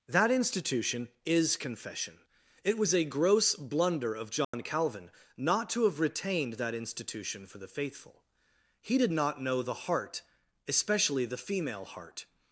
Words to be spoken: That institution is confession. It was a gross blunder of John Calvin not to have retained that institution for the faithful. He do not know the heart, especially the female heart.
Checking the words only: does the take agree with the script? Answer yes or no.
no